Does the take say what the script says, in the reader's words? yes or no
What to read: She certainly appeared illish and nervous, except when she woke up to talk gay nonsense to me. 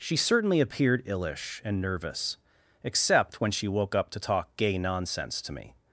yes